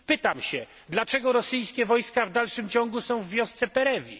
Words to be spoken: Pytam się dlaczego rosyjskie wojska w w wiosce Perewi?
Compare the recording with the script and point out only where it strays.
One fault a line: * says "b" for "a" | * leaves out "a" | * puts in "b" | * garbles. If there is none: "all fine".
* puts in "dalszym ciągu są"